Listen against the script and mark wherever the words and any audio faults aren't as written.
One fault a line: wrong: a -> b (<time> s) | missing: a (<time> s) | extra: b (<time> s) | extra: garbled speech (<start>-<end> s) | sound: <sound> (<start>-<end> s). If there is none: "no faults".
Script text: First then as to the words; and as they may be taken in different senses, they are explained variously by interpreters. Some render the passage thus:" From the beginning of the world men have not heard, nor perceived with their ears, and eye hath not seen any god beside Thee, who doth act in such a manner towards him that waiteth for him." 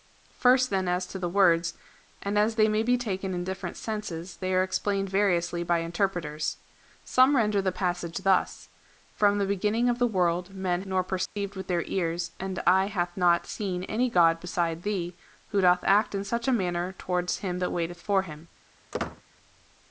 missing: have not heard (10.8 s)
sound: dropout (11.3-11.4 s)
sound: squeak (18.9-19.2 s)